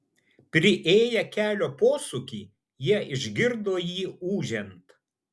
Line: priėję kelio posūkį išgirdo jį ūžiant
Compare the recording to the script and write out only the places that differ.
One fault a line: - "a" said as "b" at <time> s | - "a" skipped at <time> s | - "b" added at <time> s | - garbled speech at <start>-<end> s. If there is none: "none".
- "jie" added at 2.9 s